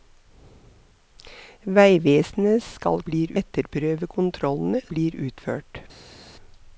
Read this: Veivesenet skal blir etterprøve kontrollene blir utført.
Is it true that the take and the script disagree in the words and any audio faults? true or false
false